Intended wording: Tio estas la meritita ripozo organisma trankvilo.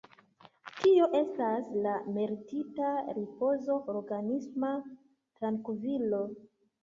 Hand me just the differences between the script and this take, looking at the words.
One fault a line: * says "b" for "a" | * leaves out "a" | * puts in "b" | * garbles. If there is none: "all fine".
all fine